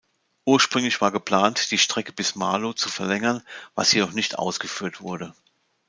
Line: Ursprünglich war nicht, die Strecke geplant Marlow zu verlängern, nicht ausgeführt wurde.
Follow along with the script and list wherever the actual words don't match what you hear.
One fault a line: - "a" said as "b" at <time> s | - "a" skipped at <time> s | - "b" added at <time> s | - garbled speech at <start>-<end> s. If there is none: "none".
- "nicht" said as "geplant" at 1.1 s
- "geplant" said as "bis" at 2.1 s
- "was jedoch" added at 3.8 s